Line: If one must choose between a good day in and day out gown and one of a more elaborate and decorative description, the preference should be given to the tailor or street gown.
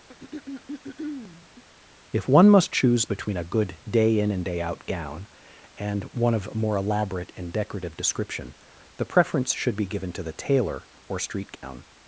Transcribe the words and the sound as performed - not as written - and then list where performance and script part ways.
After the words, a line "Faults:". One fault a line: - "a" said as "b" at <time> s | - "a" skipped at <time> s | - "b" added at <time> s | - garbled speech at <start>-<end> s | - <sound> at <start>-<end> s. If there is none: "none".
If one must choose between a good day in and day out gown and one of more elaborate and decorative description, the preference should be given to the tailor or street gown.
Faults:
- throat clearing at 0.1-1.6 s
- "a" skipped at 6.5 s
- dropout at 11.6-11.6 s